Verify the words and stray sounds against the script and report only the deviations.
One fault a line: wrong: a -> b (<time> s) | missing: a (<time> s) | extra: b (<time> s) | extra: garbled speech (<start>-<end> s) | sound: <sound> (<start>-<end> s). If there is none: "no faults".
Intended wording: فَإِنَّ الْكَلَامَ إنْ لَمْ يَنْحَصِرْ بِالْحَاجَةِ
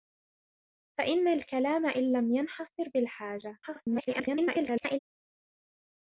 extra: garbled speech (3.6-5.0 s)